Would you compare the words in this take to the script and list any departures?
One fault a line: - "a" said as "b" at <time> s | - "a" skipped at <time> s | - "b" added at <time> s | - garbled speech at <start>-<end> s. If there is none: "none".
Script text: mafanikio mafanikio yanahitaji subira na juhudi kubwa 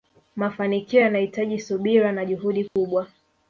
- "mafanikio" skipped at 1.0 s